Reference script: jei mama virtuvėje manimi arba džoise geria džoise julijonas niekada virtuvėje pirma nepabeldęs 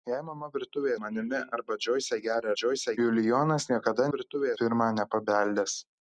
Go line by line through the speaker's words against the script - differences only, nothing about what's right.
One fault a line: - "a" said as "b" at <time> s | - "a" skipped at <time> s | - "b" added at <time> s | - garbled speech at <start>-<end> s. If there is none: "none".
none